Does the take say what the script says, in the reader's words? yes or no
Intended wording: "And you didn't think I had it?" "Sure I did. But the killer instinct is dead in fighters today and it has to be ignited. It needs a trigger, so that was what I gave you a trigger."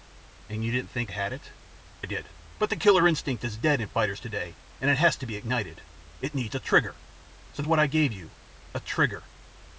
no